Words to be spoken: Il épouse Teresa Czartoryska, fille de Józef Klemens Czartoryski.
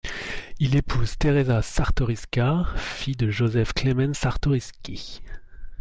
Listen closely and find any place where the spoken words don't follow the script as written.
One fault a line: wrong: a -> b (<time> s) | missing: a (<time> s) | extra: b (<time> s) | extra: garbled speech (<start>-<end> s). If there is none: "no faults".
no faults